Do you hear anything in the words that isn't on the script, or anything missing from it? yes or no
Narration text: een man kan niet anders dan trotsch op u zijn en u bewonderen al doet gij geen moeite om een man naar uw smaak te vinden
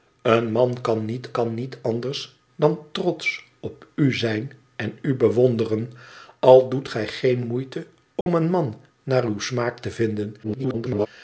yes